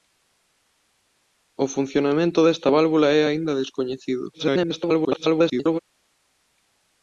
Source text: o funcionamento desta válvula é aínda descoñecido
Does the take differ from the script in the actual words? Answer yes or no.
yes